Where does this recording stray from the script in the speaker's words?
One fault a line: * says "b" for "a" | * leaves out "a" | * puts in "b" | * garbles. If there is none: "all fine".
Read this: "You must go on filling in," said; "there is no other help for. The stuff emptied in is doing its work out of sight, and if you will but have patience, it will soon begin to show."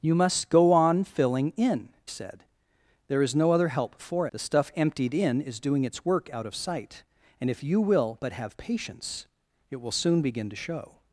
all fine